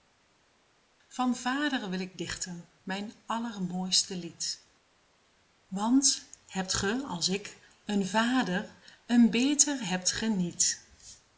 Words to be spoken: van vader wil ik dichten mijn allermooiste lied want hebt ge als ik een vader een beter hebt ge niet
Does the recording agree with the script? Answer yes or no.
yes